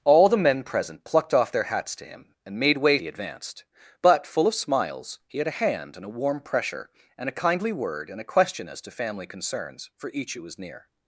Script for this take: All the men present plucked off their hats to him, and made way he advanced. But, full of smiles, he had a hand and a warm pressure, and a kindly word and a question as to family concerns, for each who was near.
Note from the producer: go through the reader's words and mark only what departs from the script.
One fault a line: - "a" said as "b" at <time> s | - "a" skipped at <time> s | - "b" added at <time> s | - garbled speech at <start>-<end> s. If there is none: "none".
none